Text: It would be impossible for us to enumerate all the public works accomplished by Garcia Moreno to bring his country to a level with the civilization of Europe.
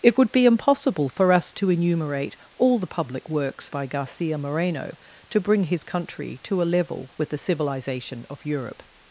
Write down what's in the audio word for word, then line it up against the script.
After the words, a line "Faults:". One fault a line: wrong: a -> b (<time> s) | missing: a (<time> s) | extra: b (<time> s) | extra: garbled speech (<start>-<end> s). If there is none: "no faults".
It would be impossible for us to enumerate all the public works by Garcia Moreno to bring his country to a level with the civilization of Europe.
Faults:
missing: accomplished (3.7 s)